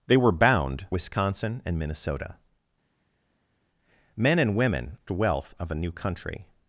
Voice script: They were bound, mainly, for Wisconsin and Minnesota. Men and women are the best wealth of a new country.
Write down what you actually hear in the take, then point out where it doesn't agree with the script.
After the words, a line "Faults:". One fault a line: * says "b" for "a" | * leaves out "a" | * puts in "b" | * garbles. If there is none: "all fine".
They were bound, Wisconsin and Minnesota. Men and women wealth of a new country.
Faults:
* leaves out "mainly for"
* leaves out "are the best"